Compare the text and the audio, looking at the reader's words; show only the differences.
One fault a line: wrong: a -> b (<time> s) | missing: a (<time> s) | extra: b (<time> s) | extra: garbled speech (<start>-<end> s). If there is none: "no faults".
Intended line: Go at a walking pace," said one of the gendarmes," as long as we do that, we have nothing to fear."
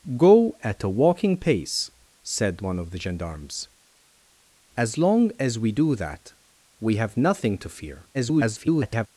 extra: garbled speech (8.1-9.1 s)